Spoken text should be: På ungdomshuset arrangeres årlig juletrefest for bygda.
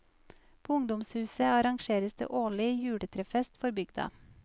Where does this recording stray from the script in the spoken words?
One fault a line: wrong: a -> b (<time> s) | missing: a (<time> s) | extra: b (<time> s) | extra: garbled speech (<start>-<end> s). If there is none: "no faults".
extra: det (2.1 s)